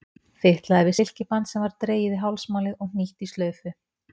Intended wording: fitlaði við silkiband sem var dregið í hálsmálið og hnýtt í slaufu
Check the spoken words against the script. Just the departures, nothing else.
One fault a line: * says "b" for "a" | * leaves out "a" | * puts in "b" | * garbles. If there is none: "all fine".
all fine